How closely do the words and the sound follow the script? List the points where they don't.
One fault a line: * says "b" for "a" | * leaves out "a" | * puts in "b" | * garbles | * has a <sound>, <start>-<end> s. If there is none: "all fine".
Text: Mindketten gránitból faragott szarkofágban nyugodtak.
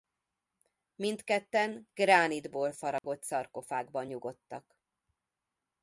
* has a dropout, 3.0-3.0 s